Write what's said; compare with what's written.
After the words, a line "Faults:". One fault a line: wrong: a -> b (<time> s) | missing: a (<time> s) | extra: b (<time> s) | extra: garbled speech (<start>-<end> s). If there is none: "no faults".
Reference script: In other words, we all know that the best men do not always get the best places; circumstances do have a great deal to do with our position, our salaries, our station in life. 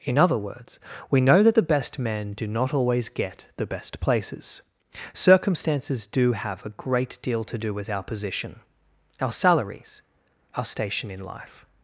In other words, we know that the best men do not always get the best places; circumstances do have a great deal to do with our position, our salaries, our station in life.
Faults:
missing: all (1.2 s)